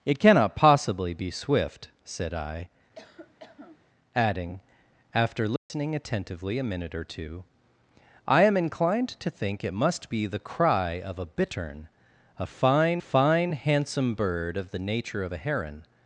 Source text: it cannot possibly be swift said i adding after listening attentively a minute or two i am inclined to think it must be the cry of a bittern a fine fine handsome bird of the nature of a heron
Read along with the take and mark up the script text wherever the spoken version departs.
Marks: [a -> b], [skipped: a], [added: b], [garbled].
it cannot possibly be swift said i adding after listening attentively a minute or two i am inclined to think it must be the cry of a bittern a fine fine handsome bird of the nature of a heron